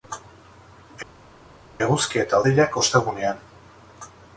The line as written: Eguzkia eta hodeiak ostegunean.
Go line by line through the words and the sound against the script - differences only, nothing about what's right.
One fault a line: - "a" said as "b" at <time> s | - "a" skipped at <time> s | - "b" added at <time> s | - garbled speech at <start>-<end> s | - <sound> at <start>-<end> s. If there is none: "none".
none